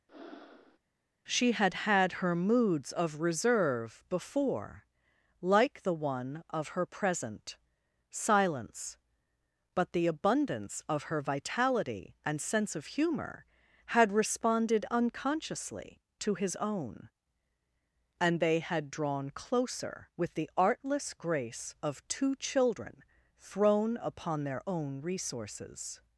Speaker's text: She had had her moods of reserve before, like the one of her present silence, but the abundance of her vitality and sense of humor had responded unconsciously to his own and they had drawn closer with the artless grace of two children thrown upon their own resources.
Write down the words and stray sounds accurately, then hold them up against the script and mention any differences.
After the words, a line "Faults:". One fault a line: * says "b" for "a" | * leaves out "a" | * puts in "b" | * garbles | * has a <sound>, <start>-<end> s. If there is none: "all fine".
She had had her moods of reserve before, like the one of her present silence, but the abundance of her vitality and sense of humor had responded unconsciously to his own and they had drawn closer with the artless grace of two children thrown upon their own resources.
Faults:
* has a breath, 0.1-0.8 s